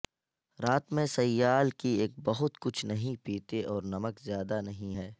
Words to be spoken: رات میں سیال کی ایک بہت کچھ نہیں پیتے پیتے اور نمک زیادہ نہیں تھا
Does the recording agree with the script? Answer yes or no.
no